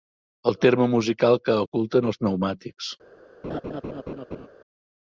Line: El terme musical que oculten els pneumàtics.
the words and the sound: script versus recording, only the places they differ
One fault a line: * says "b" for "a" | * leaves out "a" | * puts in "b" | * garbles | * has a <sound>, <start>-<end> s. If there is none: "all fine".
* has a laugh, 3.4-4.5 s